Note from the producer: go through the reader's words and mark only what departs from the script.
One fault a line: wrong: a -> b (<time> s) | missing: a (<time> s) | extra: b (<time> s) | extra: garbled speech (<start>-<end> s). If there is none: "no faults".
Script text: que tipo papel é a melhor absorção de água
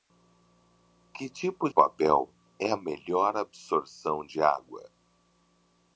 no faults